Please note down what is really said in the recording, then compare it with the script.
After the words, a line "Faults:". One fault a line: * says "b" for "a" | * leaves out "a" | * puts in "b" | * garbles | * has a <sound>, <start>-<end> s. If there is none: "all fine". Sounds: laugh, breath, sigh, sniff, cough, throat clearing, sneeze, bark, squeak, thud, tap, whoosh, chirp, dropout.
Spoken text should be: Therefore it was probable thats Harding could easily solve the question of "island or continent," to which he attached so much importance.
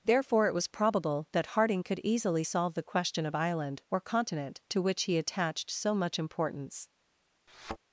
Therefore it was probable that Harding could easily solve the question of "island or continent," to which he attached so much importance.
Faults:
* says "that" for "thats"
* has a thud, 7.5-7.8 s